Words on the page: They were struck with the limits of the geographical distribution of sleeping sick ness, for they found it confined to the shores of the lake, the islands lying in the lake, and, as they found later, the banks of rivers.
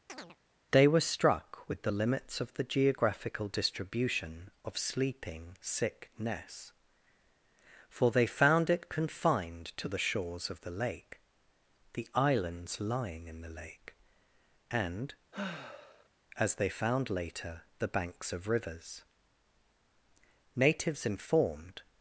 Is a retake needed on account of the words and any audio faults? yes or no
yes